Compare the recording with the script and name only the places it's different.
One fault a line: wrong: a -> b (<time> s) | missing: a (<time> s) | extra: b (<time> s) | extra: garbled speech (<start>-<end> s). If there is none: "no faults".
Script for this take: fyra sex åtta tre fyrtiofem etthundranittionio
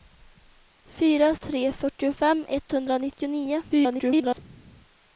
missing: sex åtta (1.4 s)
extra: garbled speech (3.7-4.4 s)